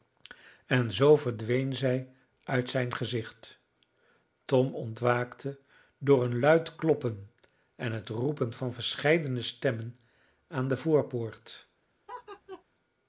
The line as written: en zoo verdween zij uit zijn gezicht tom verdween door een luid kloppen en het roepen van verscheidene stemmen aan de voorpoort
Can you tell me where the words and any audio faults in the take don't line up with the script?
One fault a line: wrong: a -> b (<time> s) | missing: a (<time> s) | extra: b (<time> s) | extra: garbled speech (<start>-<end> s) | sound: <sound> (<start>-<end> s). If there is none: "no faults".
wrong: verdween -> ontwaakte (4.8 s)
sound: laugh (12.1-12.6 s)